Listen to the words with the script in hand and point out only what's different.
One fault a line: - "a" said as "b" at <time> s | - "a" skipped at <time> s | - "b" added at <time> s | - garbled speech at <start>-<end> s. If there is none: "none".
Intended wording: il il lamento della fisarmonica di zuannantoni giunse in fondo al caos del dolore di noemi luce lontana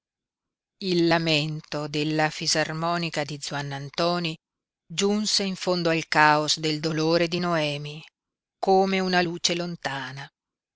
- "il" skipped at 1.1 s
- "come una" added at 8.6 s